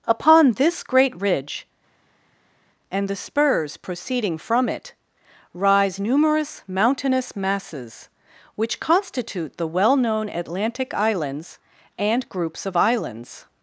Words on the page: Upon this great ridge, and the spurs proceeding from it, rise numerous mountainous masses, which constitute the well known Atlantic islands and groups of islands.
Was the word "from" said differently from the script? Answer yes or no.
no